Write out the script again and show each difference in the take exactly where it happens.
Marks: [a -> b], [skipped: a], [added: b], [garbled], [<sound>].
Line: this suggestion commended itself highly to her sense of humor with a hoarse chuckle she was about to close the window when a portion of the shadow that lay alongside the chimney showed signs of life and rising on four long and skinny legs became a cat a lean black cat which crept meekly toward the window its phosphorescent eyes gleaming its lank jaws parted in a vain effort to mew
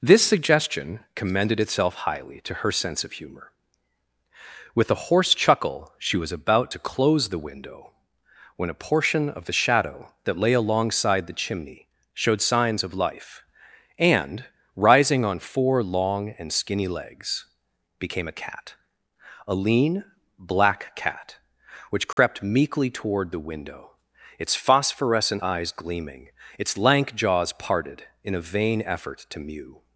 this suggestion commended itself highly to her sense of humor with a hoarse chuckle she was about to close the window when a portion of the shadow that lay alongside the chimney showed signs of life and rising on four long and skinny legs became a cat a lean black cat which crept [dropout] meekly toward the window its phosphorescent eyes gleaming its lank jaws parted in a vain effort to mew